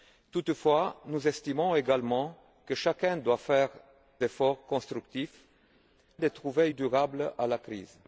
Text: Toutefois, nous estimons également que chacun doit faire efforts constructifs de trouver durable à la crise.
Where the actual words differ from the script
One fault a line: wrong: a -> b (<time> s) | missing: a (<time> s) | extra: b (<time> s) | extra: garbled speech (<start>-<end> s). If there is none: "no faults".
no faults